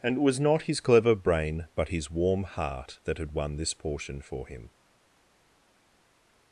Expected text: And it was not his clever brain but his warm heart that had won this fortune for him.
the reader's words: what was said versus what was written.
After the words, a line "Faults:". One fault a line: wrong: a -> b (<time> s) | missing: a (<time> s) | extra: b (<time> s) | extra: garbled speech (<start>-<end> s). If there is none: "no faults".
And it was not his clever brain but his warm heart that had won this portion for him.
Faults:
wrong: fortune -> portion (3.7 s)